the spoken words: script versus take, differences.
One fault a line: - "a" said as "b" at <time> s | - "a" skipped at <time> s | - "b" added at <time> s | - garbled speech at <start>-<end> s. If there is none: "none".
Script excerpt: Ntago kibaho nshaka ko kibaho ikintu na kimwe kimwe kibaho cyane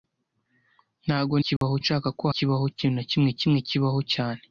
none